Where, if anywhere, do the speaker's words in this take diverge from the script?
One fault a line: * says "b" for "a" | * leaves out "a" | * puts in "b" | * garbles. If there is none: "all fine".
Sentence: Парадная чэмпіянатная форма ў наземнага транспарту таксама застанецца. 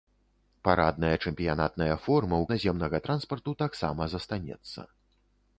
all fine